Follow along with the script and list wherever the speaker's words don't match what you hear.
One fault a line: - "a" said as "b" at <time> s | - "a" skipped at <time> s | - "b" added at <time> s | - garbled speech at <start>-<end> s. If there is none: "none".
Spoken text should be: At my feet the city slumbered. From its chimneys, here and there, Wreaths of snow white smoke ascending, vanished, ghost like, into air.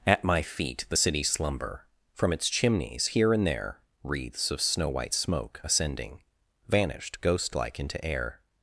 - "slumbered" said as "slumber" at 1.2 s